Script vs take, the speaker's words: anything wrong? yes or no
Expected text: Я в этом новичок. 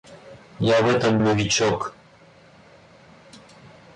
no